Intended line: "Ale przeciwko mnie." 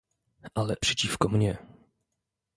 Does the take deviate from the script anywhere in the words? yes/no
no